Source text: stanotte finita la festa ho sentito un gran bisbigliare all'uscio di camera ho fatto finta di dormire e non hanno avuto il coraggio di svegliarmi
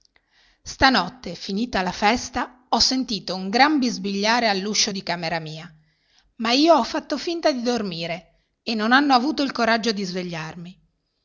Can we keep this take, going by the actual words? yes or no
no